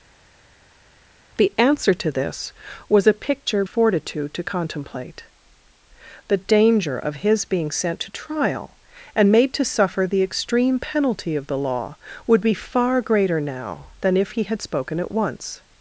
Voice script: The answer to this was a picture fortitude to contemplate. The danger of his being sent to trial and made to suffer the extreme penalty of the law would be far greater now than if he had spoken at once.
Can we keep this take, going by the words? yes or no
yes